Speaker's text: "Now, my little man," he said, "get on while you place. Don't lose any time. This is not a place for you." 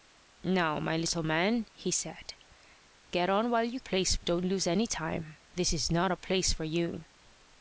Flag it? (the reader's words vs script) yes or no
no